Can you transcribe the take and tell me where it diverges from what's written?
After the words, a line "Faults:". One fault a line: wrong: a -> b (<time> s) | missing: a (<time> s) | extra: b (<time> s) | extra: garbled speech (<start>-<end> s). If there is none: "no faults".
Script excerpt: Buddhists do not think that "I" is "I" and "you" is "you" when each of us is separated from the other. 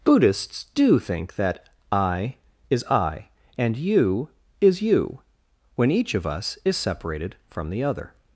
Buddhists do think that "I" is "I" and "you" is "you" when each of us is separated from the other.
Faults:
missing: not (1.0 s)